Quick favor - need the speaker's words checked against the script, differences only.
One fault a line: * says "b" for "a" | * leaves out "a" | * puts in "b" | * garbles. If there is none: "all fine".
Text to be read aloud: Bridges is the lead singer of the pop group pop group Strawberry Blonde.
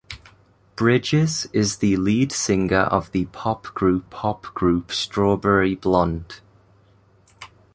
all fine